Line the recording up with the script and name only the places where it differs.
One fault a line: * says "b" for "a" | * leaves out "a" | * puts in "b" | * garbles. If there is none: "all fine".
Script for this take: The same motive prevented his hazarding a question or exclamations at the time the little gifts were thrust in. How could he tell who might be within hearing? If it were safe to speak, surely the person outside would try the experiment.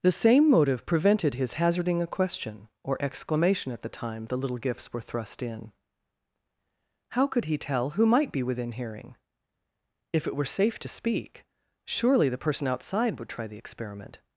* says "exclamation" for "exclamations"